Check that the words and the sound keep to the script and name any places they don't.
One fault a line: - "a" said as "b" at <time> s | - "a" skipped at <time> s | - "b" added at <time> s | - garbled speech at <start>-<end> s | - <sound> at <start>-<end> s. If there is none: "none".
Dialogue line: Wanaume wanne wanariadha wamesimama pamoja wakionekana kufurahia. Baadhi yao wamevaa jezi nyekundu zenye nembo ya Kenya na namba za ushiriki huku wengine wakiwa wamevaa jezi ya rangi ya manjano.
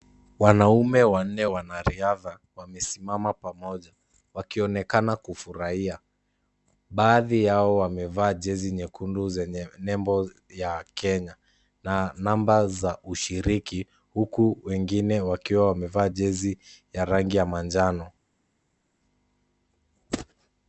none